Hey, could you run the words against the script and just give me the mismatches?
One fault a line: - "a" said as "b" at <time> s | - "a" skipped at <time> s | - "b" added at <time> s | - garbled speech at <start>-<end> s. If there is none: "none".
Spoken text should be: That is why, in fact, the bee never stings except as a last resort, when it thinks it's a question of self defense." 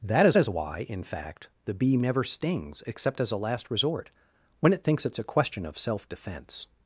- "is" added at 0.4 s